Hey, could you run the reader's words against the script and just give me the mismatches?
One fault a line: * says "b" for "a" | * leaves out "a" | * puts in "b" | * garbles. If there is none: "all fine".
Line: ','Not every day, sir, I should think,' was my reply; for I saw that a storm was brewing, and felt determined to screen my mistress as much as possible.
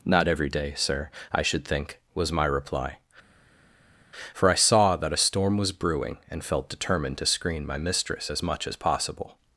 all fine